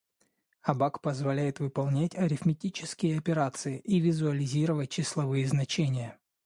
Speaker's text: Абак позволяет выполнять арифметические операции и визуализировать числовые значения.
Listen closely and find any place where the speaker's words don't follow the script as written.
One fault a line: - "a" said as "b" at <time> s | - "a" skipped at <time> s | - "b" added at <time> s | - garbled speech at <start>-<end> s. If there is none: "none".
none